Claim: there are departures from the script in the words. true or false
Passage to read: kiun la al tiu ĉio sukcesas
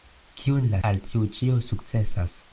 false